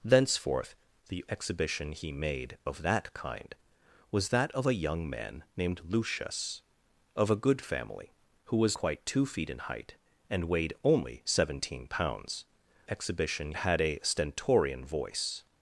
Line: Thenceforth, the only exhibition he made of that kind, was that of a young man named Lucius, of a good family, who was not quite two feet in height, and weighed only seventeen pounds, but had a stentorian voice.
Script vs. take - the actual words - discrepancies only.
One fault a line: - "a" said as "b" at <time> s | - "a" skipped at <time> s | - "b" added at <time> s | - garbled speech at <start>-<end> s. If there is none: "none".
- "only" skipped at 1.2 s
- "not" skipped at 8.8 s
- "but" said as "exhibition" at 12.9 s